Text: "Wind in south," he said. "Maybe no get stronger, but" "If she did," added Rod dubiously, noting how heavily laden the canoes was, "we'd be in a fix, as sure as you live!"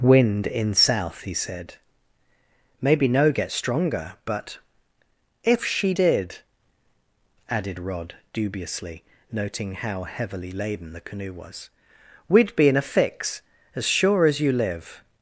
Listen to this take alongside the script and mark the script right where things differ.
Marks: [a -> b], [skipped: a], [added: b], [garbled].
"Wind in south," he said. "Maybe no get stronger, but" "If she did," added Rod dubiously, noting how heavily laden the [canoes -> canoe] was, "we'd be in a fix, as sure as you live!"